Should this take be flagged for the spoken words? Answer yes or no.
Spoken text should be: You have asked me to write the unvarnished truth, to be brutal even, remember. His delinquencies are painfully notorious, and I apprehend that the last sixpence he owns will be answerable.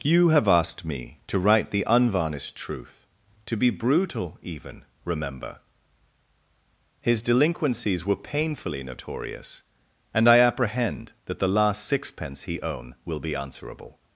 yes